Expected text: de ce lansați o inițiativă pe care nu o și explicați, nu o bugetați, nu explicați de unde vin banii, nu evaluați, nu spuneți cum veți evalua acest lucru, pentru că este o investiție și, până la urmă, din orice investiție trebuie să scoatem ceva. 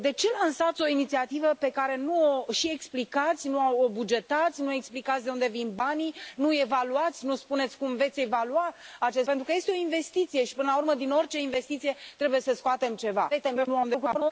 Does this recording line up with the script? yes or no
no